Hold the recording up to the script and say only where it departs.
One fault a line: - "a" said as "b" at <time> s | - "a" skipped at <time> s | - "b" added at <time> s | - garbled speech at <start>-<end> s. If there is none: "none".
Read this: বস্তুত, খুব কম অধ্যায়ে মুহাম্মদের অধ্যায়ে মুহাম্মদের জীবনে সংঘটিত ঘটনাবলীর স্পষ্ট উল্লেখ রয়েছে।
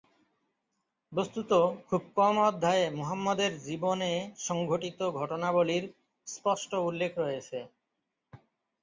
- "অধ্যায়ে মুহাম্মদের" skipped at 3.5 s